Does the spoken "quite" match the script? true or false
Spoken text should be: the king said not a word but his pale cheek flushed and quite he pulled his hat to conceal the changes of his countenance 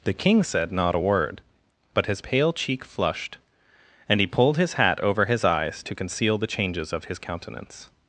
false